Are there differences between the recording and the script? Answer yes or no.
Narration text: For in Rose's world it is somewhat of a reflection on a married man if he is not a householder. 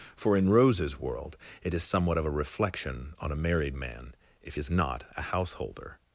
yes